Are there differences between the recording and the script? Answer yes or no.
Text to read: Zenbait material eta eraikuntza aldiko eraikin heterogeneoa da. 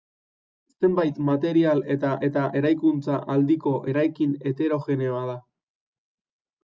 yes